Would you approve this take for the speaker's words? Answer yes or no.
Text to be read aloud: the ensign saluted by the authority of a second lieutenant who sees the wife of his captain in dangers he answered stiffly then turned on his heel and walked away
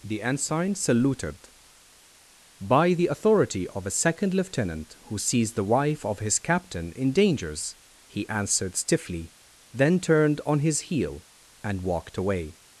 yes